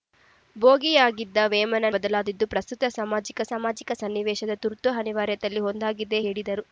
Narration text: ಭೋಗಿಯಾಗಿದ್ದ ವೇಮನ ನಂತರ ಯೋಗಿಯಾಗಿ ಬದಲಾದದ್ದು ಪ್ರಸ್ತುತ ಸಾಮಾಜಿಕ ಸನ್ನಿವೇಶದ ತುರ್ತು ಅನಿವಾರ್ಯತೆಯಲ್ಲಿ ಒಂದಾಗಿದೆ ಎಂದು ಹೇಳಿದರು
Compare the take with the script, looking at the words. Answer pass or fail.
fail